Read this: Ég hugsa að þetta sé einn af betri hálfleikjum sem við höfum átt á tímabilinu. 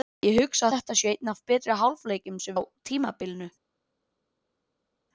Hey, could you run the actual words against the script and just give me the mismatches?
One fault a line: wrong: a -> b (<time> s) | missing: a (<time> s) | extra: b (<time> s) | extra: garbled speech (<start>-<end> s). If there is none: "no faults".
missing: að (0.7 s)
missing: við höfum átt (2.6 s)